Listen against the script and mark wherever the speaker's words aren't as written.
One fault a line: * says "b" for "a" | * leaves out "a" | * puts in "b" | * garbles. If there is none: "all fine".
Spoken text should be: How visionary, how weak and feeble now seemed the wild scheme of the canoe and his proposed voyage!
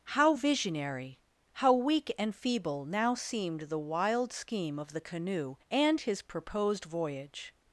all fine